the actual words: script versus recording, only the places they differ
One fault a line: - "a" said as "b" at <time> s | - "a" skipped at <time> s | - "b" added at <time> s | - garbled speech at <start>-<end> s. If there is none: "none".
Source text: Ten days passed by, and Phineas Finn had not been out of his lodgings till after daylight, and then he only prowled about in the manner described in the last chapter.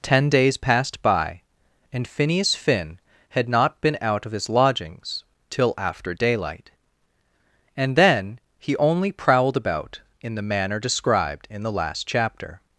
none